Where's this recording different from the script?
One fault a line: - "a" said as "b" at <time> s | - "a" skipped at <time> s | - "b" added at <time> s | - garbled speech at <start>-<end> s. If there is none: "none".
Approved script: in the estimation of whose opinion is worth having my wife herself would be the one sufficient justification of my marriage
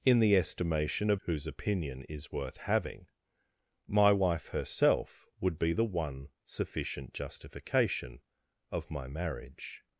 none